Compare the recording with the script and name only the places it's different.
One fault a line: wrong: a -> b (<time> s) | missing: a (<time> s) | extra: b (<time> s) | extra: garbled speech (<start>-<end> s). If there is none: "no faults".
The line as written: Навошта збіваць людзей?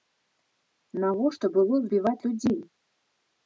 extra: было (1.6 s)